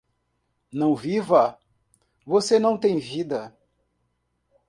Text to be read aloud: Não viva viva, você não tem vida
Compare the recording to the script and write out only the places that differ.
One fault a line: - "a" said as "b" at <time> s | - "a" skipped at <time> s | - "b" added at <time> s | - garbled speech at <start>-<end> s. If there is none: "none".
- "viva" skipped at 1.6 s